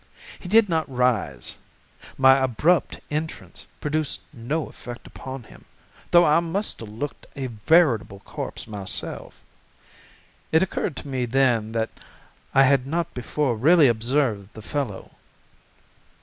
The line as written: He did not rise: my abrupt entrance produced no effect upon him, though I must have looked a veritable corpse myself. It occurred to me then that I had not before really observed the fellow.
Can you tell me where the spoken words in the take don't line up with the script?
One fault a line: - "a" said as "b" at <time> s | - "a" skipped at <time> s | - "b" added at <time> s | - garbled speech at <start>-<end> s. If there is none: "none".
none